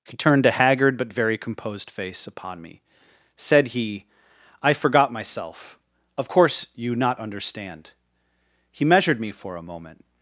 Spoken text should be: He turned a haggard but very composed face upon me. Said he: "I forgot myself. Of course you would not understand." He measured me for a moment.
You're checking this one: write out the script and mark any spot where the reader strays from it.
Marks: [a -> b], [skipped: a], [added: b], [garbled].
He turned a haggard but very composed face upon me. Said he: "I forgot myself. Of course you [skipped: would] not understand." He measured me for a moment.